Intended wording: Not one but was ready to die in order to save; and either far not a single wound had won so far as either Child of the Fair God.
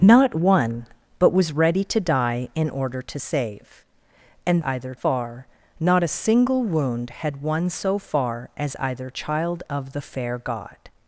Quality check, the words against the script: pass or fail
pass